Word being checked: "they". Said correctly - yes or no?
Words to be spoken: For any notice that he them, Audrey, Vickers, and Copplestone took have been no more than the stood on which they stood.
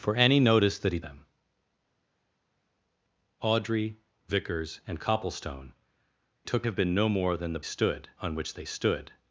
yes